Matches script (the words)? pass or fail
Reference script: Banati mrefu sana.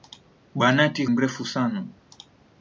pass